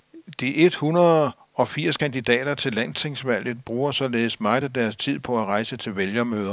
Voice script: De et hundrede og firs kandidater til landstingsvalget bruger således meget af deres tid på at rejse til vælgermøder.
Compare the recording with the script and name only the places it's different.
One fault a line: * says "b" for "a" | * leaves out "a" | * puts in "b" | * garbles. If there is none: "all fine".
all fine